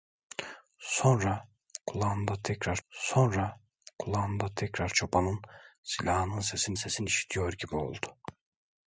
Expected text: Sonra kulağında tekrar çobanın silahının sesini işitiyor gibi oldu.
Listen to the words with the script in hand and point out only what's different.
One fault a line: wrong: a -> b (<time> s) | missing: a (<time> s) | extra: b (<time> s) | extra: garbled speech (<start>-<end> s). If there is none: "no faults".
extra: sonra kulağında tekrar (2.9 s)
extra: sesini (6.7 s)